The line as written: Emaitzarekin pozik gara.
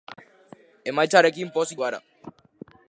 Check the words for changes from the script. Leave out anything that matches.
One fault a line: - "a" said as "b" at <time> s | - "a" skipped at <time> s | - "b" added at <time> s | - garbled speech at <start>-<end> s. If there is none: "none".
none